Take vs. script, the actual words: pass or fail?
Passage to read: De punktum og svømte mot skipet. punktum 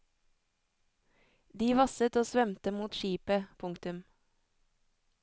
fail